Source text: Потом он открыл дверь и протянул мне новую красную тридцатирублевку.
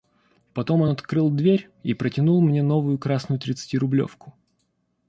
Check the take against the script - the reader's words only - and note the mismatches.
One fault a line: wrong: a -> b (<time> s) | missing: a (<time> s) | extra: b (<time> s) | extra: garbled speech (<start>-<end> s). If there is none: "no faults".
no faults